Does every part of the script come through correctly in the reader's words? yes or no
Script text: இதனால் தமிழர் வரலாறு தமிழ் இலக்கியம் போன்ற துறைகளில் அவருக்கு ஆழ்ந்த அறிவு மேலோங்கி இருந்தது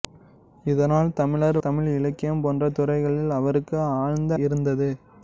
no